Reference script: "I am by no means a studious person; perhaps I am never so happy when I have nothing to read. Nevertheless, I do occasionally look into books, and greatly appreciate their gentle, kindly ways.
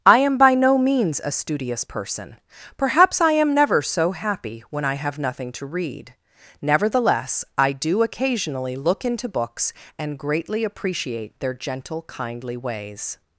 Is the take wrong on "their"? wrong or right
right